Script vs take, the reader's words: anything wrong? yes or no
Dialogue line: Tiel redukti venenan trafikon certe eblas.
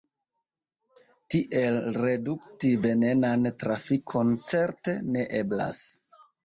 yes